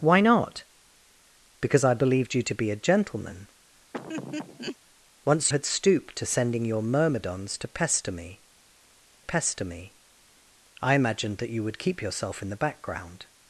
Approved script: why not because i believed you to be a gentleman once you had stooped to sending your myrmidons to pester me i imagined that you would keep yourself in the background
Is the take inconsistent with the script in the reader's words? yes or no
yes